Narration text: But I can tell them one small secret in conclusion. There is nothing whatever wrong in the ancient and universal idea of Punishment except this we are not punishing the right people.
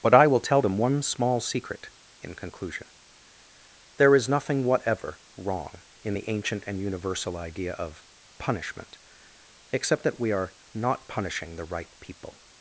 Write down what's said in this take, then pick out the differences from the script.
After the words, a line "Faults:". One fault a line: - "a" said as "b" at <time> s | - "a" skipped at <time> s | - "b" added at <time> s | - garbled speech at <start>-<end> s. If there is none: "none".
But I will tell them one small secret in conclusion. There is nothing whatever wrong in the ancient and universal idea of Punishment except that we are not punishing the right people.
Faults:
- "can" said as "will" at 0.3 s
- "this" said as "that" at 10.0 s